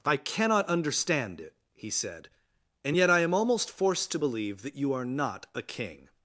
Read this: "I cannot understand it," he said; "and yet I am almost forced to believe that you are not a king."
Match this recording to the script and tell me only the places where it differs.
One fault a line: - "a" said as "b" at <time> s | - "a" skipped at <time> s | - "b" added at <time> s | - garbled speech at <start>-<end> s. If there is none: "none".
none